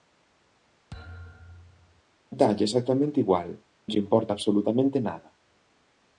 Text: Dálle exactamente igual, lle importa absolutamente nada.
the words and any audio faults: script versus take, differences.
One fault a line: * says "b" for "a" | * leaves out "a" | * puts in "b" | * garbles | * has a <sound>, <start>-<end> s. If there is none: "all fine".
* has a thud, 0.9-2.0 s